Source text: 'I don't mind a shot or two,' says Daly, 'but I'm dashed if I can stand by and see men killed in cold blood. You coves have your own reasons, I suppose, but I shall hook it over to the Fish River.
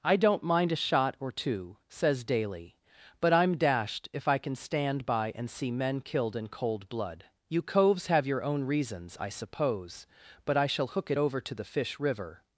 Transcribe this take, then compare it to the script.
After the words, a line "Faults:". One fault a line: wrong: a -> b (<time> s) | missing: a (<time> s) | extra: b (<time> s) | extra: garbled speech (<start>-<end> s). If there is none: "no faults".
'I don't mind a shot or two,' says Daly, 'but I'm dashed if I can stand by and see men killed in cold blood. You coves have your own reasons, I suppose, but I shall hook it over to the Fish River.
Faults:
no faults